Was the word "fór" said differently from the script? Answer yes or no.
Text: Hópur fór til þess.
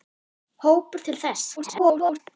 yes